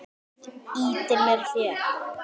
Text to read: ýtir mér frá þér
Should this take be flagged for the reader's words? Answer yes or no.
yes